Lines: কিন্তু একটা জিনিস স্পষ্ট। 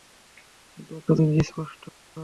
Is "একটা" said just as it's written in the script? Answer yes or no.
yes